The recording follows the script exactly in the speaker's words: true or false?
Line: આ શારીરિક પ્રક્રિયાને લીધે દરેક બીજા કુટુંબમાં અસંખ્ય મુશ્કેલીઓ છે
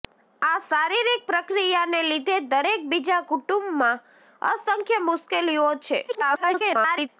false